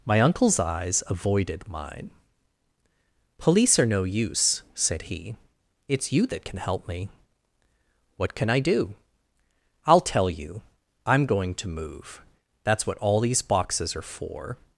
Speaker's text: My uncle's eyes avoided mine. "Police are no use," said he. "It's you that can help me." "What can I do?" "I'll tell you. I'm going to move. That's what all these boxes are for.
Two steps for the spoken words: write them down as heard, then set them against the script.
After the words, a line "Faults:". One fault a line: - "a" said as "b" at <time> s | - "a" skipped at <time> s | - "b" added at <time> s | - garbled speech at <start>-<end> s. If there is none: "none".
My uncle's eyes avoided mine. "Police are no use," said he. "It's you that can help me." "What can I do?" "I'll tell you. I'm going to move. That's what all these boxes are for.
Faults:
none